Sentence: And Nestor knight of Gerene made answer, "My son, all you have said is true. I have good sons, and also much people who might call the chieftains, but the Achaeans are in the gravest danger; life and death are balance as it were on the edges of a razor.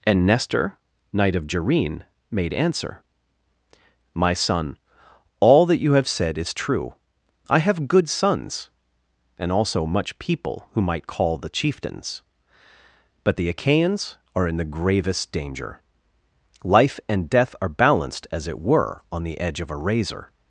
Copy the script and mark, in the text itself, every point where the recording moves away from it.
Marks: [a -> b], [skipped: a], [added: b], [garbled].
And Nestor knight of Gerene made answer, "My son, all [added: that] you have said is true. I have good sons, and also much people who might call the chieftains, but the Achaeans are in the gravest danger; life and death are [balance -> balanced] as it were on the [edges -> edge] of a razor.